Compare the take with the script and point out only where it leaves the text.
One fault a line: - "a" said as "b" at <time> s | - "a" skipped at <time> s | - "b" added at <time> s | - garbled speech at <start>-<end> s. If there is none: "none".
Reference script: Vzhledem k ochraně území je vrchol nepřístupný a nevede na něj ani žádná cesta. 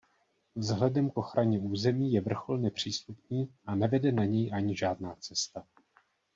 none